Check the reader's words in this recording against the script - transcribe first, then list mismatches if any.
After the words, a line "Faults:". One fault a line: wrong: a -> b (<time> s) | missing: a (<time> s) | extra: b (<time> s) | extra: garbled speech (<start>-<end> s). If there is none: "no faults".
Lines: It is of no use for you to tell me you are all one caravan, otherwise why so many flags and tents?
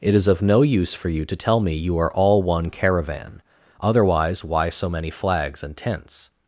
It is of no use for you to tell me you are all one caravan, otherwise why so many flags and tents?
Faults:
no faults